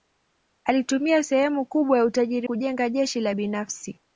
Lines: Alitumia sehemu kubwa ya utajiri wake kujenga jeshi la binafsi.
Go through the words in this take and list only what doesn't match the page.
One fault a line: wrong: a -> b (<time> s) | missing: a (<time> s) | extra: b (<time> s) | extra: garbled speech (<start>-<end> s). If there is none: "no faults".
missing: wake (2.5 s)